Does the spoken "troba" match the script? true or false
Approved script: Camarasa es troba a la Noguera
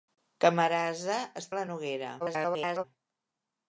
false